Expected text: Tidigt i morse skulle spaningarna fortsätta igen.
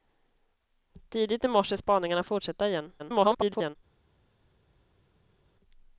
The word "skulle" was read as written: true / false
false